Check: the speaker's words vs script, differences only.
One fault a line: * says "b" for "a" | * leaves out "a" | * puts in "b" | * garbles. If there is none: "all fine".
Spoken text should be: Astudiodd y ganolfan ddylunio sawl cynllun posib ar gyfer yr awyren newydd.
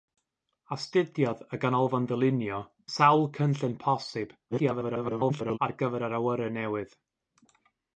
* garbles